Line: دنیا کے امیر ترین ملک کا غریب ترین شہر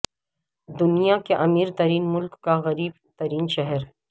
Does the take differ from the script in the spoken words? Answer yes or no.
no